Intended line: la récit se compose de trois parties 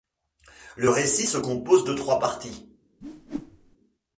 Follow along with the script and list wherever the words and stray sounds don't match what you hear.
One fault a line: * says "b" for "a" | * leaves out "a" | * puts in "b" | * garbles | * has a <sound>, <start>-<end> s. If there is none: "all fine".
* says "le" for "la"
* has a whoosh, 3.0-3.8 s